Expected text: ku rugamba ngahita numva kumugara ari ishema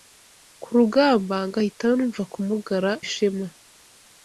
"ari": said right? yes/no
no